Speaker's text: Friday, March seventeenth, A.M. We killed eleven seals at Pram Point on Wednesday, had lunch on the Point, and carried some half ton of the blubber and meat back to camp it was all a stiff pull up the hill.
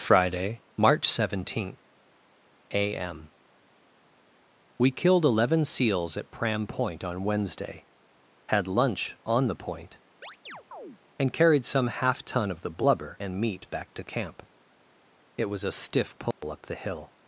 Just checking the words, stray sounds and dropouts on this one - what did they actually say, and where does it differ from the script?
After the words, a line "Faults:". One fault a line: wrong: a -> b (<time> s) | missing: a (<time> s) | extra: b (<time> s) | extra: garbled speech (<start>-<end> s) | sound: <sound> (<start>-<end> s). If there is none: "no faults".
Friday, March seventeenth, A.M. We killed eleven seals at Pram Point on Wednesday, had lunch on the Point, and carried some half ton of the blubber and meat back to camp it was a stiff pull up the hill.
Faults:
sound: chirp (10.2-11.0 s)
missing: all (15.6 s)
sound: dropout (16.3-16.4 s)